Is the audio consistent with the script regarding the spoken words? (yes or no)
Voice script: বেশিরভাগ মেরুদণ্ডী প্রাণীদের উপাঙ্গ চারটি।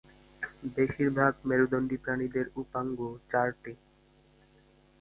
yes